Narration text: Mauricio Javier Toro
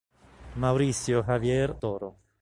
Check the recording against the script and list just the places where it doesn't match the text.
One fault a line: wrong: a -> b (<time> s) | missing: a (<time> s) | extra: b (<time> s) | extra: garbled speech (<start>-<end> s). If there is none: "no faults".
no faults